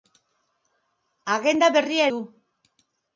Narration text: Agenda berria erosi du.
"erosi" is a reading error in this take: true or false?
true